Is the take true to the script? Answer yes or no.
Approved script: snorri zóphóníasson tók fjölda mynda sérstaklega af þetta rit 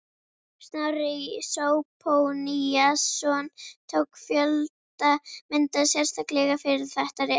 no